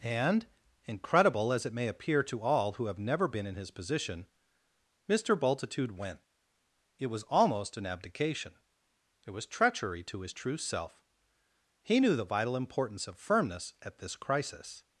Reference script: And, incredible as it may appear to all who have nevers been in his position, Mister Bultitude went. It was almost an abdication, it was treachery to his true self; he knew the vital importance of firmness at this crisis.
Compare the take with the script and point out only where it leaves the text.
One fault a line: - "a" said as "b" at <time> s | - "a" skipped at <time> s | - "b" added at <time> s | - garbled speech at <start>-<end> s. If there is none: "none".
- "nevers" said as "never" at 3.0 s